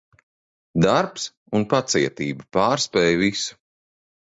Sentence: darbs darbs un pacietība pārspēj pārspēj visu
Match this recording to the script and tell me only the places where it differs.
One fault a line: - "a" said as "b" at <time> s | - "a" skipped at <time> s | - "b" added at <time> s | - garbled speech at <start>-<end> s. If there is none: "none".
- "darbs" skipped at 1.3 s
- "pārspēj" skipped at 3.2 s